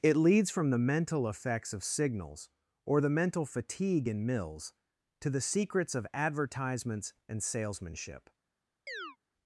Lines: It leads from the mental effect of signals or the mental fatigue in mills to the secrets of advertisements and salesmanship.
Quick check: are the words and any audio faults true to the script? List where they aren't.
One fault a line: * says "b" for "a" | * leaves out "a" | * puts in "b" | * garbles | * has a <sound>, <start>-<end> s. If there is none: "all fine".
* says "effects" for "effect"
* has a chirp, 8.9-9.2 s